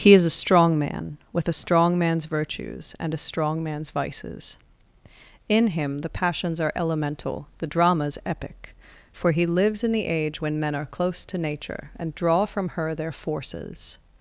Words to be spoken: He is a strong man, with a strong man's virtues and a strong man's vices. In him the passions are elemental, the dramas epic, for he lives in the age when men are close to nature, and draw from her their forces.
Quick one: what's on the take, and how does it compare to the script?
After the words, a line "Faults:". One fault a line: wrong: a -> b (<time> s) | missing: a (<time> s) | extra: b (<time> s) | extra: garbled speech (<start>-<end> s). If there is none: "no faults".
He is a strong man, with a strong man's virtues and a strong man's vices. In him the passions are elemental, the dramas epic, for he lives in the age when men are close to nature, and draw from her their forces.
Faults:
no faults